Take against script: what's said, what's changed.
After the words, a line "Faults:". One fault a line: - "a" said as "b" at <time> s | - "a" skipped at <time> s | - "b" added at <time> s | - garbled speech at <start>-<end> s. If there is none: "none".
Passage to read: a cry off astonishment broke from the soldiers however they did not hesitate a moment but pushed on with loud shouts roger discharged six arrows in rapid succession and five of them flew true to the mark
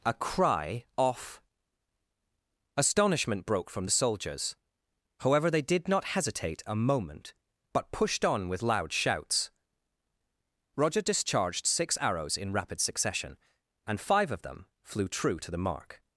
a cry off astonishment broke from the soldiers however they did not hesitate a moment but pushed on with loud shouts roger discharged six arrows in rapid succession and five of them flew true to the mark
Faults:
none